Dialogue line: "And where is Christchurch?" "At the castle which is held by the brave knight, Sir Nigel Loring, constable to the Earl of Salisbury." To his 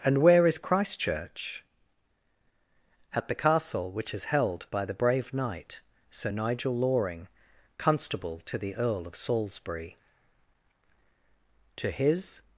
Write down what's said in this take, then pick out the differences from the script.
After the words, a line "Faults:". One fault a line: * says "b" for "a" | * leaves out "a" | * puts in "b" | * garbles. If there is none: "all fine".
"And where is Christchurch?" "At the castle which is held by the brave knight, Sir Nigel Loring, constable to the Earl of Salisbury." To his
Faults:
all fine